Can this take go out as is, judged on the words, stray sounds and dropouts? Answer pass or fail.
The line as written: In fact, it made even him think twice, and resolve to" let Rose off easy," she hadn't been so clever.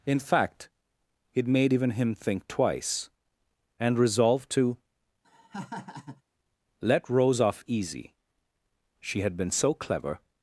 fail